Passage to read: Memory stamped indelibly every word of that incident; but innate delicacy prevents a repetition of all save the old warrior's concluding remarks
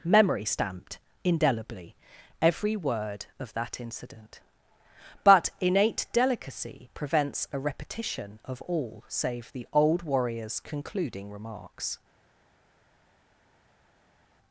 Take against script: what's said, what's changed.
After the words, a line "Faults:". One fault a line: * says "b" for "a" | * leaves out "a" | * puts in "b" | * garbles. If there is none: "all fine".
Memory stamped indelibly every word of that incident; but innate delicacy prevents a repetition of all save the old warrior's concluding remarks
Faults:
all fine